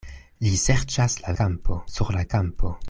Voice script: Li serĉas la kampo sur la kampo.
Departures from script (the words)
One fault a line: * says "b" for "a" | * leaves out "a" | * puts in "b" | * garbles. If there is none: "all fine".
all fine